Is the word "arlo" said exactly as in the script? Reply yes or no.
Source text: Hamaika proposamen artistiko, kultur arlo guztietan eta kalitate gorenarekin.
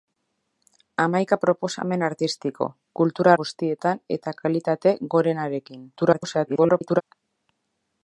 no